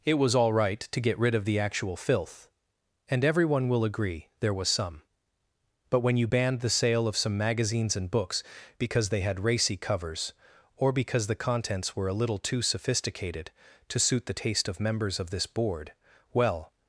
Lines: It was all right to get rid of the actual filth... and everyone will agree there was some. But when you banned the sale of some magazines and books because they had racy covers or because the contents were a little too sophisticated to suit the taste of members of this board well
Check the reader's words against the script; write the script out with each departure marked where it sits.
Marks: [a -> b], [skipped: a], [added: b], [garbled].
It was all right to get rid of the actual filth... and everyone will agree there was some. But when you banned the sale of some magazines and books because they had racy covers or because the contents were a little too sophisticated to suit the taste of members of this board well